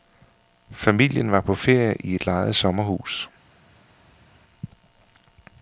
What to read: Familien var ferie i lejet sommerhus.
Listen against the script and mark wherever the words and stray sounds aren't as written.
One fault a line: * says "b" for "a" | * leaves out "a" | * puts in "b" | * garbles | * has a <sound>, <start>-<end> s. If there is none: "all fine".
* puts in "på"
* puts in "et"